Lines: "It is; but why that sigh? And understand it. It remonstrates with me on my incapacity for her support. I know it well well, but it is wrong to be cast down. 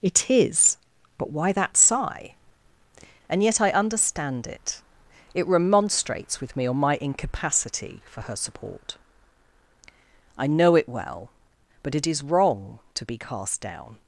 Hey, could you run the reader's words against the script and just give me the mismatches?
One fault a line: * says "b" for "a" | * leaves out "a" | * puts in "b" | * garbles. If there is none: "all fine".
* puts in "yet I"
* leaves out "well"